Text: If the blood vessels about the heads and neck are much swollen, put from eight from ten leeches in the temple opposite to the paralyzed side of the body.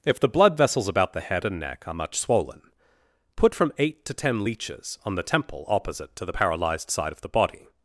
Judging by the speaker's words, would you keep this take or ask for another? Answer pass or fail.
fail